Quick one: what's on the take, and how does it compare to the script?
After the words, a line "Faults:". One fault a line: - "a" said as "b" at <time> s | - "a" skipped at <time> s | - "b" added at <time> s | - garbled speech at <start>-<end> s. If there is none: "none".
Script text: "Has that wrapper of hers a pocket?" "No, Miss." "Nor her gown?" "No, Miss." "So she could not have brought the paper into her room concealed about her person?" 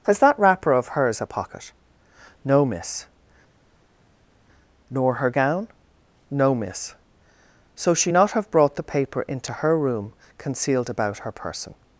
"Has that wrapper of hers a pocket?" "No, Miss." "Nor her gown?" "No, Miss." "So she not have brought the paper into her room concealed about her person?"
Faults:
- "could" skipped at 8.1 s